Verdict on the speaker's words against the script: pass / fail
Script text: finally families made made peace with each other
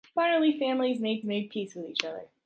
pass